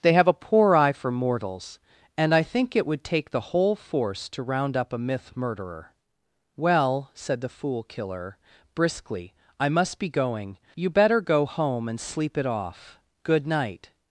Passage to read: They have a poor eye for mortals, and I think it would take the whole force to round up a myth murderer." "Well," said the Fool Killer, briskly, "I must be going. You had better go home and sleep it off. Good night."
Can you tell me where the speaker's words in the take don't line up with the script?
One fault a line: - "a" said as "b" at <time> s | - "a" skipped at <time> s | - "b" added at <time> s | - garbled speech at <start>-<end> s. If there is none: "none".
- "had" skipped at 10.9 s